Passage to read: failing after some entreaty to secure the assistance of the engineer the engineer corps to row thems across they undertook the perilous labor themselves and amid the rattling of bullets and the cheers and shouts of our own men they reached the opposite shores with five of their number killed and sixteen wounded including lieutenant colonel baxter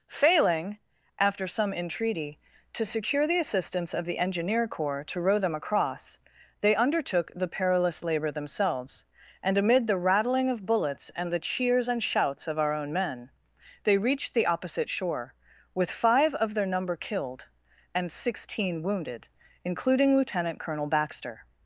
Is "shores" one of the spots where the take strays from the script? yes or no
yes